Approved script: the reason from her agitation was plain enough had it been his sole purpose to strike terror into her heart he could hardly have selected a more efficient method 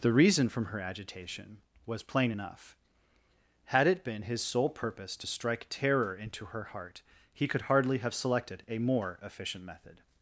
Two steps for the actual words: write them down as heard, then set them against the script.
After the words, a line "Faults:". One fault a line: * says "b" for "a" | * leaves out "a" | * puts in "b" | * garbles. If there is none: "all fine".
the reason from her agitation was plain enough had it been his sole purpose to strike terror into her heart he could hardly have selected a more efficient method
Faults:
all fine